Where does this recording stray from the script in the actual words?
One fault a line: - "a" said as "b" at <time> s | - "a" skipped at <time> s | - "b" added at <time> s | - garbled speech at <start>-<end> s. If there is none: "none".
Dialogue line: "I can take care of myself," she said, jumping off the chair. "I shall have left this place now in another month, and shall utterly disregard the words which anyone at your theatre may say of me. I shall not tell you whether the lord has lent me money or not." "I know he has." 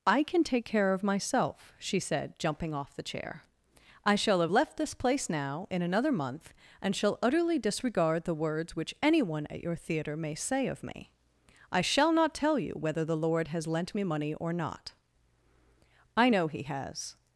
none